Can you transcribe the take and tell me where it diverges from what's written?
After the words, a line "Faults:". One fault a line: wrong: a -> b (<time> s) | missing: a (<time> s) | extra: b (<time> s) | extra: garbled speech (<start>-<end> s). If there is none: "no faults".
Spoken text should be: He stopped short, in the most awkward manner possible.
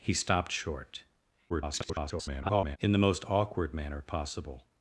He stopped short, [garbled] in the most awkward manner possible.
Faults:
extra: garbled speech (1.5-2.8 s)